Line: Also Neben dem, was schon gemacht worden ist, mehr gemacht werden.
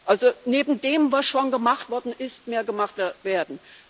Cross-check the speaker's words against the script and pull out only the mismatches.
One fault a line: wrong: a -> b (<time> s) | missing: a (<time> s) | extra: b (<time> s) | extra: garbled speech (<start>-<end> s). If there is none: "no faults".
no faults